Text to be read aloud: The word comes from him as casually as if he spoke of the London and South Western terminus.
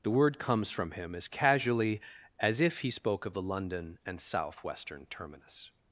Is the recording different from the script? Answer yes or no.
no